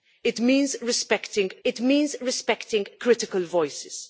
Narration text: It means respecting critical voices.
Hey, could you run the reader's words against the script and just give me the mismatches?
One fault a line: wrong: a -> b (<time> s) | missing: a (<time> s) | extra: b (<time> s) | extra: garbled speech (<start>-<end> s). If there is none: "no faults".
extra: it means respecting (1.6 s)